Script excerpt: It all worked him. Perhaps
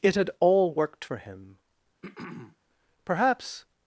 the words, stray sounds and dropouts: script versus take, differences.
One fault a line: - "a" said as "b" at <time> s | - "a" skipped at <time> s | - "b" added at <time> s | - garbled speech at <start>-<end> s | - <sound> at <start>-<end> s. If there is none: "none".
- "had" added at 0.1 s
- "for" added at 1.0 s
- throat clearing at 2.0-2.6 s